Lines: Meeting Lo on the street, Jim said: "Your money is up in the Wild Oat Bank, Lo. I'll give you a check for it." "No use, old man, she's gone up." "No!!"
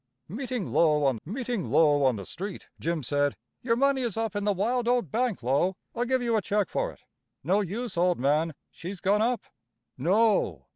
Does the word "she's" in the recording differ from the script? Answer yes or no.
no